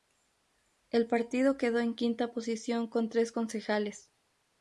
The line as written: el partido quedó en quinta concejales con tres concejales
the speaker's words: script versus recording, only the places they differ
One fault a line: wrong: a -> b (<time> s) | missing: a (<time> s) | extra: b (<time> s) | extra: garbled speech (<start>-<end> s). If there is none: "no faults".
wrong: concejales -> posición (2.3 s)